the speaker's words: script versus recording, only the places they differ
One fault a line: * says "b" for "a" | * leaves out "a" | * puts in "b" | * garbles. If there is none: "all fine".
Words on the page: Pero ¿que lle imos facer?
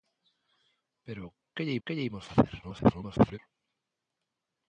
* puts in "que lle"
* garbles